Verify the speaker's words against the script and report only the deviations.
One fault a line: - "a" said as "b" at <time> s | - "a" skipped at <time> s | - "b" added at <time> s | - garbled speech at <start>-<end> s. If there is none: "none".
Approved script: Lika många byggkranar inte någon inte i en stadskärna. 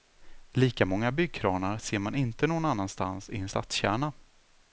- "ser man" added at 1.8 s
- "inte" said as "annanstans" at 2.6 s